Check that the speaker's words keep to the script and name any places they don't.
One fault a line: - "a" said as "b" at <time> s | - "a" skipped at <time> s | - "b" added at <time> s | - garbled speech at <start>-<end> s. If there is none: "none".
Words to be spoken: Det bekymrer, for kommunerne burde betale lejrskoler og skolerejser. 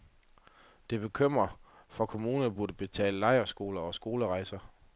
none